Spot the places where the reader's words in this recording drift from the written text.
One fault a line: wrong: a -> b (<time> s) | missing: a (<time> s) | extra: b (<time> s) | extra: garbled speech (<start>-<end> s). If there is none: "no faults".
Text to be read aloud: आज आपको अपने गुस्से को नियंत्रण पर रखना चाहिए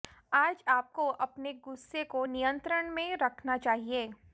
wrong: पर -> में (2.9 s)